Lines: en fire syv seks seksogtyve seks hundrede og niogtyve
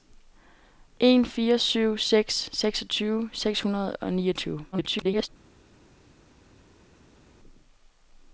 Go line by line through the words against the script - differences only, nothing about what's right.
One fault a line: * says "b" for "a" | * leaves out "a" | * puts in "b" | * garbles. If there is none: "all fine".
* garbles